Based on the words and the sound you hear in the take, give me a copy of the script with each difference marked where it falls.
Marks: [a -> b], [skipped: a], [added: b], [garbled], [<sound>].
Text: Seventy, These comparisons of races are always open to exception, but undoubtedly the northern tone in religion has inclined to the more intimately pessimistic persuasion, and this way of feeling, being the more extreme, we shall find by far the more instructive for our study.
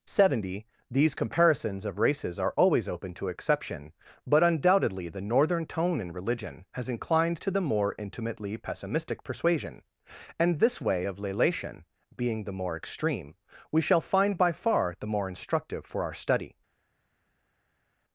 Seventy, These comparisons of races are always open to exception, but undoubtedly the northern tone in religion has inclined to the more intimately pessimistic persuasion, and this way of [feeling, -> lelation] being the more extreme, we shall find by far the more instructive for our study.